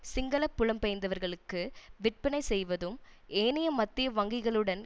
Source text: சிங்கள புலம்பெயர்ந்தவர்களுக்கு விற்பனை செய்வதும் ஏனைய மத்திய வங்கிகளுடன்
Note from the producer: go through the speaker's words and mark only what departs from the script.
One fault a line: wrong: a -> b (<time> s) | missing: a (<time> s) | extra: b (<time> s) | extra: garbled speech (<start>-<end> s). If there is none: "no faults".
no faults